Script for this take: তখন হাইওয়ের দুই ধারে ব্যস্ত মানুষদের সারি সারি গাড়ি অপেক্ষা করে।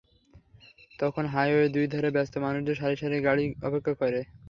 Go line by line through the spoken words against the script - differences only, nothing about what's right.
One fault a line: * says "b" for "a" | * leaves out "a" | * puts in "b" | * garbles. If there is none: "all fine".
all fine